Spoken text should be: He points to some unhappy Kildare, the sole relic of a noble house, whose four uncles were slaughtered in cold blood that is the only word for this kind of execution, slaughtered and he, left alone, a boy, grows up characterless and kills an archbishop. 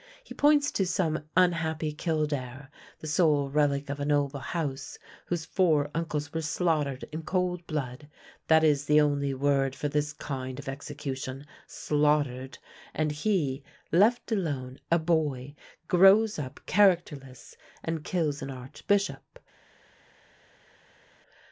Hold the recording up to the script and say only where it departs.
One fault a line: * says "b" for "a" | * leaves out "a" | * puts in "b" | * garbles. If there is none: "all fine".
all fine